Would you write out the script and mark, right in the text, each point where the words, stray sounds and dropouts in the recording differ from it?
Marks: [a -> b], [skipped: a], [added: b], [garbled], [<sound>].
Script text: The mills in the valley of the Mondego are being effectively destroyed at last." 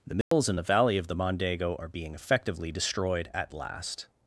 The mills [dropout] in the valley of the Mondego are being effectively destroyed at last."